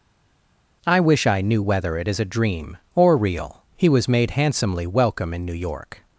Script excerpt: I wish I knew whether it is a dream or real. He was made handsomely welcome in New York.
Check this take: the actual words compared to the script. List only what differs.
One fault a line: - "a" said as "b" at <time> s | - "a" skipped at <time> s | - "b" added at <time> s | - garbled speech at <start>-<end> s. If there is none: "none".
none